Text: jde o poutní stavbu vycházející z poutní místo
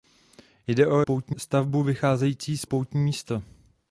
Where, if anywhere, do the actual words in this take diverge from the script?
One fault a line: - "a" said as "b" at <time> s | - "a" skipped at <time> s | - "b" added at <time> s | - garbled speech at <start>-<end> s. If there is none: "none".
none